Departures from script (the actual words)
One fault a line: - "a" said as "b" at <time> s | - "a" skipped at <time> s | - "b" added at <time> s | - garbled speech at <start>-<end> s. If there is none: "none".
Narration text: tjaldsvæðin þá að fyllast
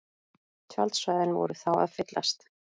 - "voru" added at 1.4 s